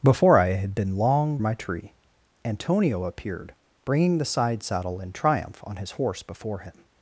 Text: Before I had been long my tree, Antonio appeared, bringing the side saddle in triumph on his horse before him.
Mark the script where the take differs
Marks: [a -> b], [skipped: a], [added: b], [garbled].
Before I had been long my tree, Antonio appeared, bringing the side saddle in triumph on his horse before him.